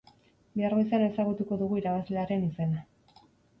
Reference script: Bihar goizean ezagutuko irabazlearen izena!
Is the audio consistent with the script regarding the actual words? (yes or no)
no